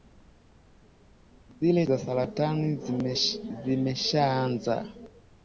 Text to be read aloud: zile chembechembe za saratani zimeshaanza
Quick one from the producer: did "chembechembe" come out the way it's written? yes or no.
no